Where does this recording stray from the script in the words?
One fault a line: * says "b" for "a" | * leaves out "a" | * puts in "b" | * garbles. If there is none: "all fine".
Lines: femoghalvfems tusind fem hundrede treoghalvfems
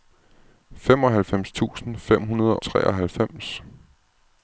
all fine